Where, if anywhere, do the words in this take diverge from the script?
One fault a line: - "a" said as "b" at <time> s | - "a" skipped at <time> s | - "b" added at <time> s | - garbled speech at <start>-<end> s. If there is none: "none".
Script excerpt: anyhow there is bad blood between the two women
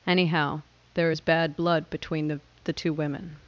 - "the" added at 2.6 s